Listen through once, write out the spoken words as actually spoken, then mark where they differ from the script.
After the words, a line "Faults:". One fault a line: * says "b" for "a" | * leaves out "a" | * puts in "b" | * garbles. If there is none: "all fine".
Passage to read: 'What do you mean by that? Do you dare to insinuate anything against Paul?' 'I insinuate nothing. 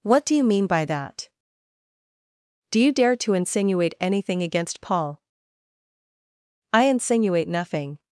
'What do you mean by that? Do you dare to insinuate anything against Paul?' 'I insinuate nothing.
Faults:
all fine